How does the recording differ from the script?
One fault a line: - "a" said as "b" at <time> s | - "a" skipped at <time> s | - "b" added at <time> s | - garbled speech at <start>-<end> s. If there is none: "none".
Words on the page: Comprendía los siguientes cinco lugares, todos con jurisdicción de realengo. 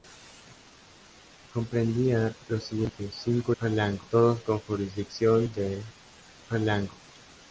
- "lugares" said as "realengo" at 3.6 s